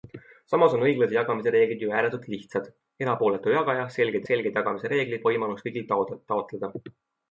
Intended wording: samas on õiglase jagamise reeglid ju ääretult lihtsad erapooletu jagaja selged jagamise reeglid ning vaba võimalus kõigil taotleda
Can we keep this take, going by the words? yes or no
no